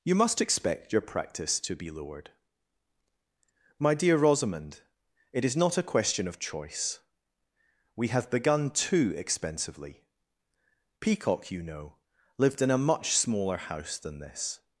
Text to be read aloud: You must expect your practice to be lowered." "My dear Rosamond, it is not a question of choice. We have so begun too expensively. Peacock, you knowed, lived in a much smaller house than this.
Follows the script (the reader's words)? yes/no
no